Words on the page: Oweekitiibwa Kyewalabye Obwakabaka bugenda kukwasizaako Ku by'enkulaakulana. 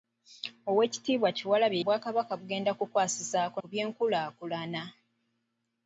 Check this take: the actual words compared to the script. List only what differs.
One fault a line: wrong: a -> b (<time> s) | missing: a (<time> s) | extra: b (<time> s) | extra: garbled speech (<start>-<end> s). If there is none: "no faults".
no faults